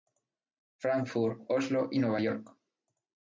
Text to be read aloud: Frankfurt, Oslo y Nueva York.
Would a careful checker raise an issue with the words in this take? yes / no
no